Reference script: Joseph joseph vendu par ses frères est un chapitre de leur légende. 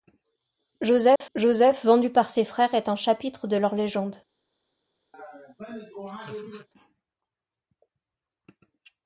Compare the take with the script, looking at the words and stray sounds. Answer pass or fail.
fail